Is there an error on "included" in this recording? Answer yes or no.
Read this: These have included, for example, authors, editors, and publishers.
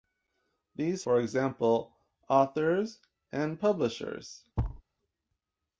yes